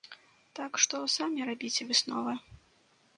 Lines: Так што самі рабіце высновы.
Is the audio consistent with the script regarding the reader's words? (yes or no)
yes